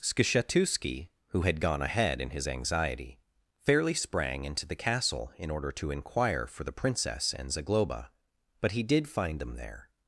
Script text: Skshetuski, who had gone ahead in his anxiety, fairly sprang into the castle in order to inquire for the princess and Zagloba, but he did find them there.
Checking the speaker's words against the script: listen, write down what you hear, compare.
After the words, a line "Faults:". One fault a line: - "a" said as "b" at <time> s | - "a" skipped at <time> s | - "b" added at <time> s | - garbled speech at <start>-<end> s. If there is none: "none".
Skshetuski, who had gone ahead in his anxiety, fairly sprang into the castle in order to inquire for the princess and Zagloba, but he did find them there.
Faults:
none